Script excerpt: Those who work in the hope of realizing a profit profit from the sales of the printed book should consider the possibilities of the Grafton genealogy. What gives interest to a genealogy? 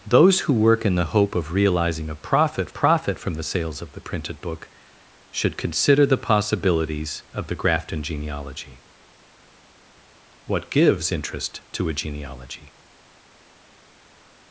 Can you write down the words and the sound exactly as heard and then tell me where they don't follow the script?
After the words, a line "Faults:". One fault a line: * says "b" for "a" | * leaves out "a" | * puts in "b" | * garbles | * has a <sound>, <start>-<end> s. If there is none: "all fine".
Those who work in the hope of realizing a profit profit from the sales of the printed book should consider the possibilities of the Grafton genealogy. What gives interest to a genealogy?
Faults:
all fine